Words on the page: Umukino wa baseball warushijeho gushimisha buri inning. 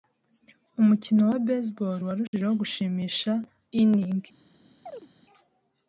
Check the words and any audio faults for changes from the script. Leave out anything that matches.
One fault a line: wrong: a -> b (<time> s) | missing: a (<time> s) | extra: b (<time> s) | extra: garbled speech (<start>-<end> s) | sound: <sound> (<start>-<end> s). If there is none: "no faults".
sound: dropout (2.3-2.3 s)
missing: buri (3.3 s)
sound: chirp (4.9-5.1 s)